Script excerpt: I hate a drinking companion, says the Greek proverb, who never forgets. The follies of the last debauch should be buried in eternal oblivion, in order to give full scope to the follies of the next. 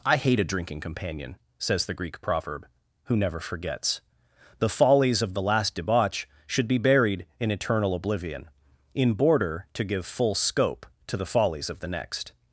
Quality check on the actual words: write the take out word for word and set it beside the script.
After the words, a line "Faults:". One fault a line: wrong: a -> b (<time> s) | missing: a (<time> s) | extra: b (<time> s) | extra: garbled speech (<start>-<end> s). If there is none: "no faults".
I hate a drinking companion, says the Greek proverb, who never forgets. The follies of the last debauch should be buried in eternal oblivion, in border to give full scope to the follies of the next.
Faults:
wrong: order -> border (9.1 s)